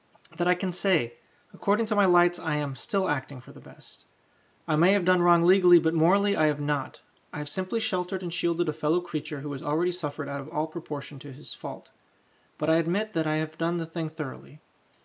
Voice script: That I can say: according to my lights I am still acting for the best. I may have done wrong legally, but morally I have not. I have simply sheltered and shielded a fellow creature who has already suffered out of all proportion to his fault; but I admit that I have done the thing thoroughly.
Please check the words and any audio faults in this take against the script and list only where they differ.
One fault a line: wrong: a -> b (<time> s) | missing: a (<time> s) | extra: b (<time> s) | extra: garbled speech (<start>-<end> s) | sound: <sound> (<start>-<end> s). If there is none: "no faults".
no faults